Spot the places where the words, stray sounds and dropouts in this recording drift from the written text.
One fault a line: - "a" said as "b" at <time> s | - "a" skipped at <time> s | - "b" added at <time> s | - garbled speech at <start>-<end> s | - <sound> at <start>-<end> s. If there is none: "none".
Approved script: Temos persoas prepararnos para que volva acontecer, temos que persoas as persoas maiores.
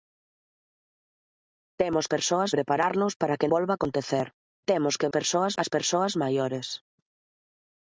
none